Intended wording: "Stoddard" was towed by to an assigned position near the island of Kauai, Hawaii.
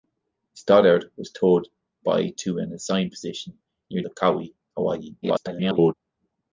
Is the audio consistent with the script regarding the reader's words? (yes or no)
no